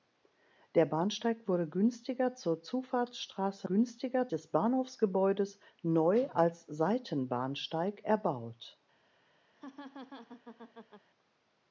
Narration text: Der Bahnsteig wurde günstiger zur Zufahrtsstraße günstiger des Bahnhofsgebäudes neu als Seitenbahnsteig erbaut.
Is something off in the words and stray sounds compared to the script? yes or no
yes